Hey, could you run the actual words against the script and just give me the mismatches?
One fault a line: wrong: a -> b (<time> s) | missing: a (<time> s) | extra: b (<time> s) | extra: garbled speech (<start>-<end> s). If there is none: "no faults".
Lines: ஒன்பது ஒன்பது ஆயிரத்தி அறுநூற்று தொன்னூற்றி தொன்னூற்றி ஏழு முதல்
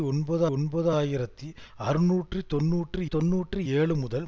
no faults